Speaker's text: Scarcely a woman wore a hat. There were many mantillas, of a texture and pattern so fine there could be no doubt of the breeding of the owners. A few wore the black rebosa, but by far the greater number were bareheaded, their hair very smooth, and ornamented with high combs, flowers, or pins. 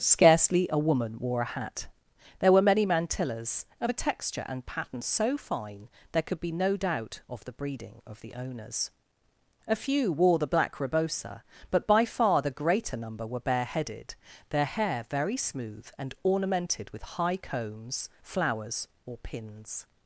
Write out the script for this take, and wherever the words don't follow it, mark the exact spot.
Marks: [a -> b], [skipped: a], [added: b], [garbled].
Scarcely a woman wore a hat. There were many mantillas, of a texture and pattern so fine there could be no doubt of the breeding of the owners. A few wore the black rebosa, but by far the greater number were bareheaded, their hair very smooth, and ornamented with high combs, flowers, or pins.